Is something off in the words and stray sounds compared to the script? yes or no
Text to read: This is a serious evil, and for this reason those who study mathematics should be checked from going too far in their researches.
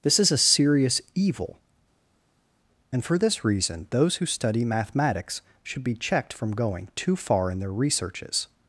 no